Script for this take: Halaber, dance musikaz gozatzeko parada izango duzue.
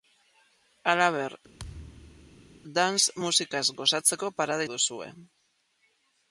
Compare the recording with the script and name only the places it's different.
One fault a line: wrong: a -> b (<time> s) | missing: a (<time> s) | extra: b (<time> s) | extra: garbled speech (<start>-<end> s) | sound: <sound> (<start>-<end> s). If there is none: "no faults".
sound: thud (1.6-2.5 s)
missing: izango (4.7 s)